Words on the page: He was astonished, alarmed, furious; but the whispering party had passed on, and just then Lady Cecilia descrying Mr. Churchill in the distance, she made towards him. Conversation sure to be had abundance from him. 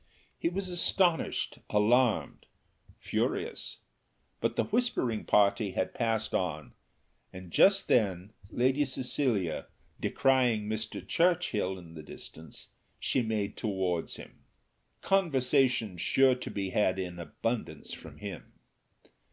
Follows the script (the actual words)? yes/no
no